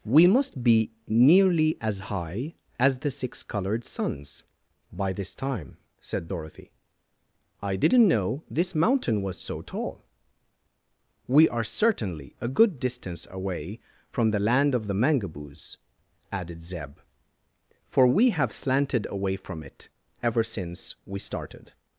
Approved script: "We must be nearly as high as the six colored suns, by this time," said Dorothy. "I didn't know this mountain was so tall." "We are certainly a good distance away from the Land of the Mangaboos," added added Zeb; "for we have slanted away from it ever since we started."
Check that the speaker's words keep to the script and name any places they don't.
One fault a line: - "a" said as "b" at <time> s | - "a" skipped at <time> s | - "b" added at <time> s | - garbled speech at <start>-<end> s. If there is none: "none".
- "added" skipped at 16.6 s